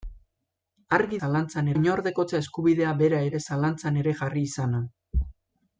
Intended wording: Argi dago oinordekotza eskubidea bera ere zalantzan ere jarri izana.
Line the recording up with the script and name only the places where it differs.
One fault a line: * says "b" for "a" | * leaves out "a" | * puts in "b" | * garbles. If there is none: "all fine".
* says "zalantzan" for "dago"